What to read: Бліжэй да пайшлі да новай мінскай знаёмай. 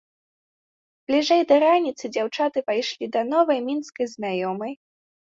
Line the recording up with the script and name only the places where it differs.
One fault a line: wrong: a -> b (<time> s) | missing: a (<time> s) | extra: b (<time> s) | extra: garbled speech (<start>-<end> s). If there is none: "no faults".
extra: раніцы дзяўчаты (1.6 s)